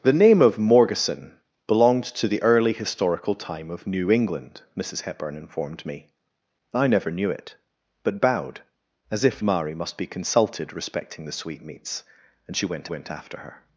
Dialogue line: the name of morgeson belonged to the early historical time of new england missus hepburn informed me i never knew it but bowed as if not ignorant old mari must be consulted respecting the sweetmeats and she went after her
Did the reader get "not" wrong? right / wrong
wrong